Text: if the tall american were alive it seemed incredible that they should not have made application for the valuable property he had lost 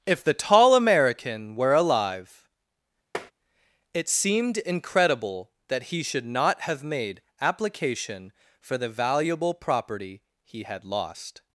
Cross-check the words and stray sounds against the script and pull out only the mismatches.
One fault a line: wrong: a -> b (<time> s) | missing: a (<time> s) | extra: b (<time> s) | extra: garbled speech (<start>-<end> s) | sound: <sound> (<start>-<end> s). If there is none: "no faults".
sound: tap (3.1-3.3 s)
wrong: they -> he (5.8 s)